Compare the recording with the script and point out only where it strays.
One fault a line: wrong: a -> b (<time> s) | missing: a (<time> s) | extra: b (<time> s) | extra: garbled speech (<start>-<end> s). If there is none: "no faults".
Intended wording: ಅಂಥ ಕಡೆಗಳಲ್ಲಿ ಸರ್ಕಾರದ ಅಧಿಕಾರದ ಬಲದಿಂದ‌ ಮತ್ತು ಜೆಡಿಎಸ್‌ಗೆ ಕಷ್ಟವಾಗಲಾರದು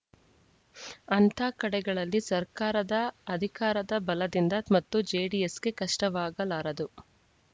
no faults